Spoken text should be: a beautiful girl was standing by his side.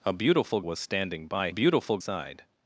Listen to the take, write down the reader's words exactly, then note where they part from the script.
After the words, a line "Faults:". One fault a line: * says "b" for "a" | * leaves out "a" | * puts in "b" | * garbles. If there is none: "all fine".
a beautiful was standing by beautiful side.
Faults:
* leaves out "girl"
* says "beautiful" for "his"